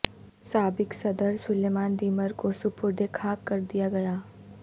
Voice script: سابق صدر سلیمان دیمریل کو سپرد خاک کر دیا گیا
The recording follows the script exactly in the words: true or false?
true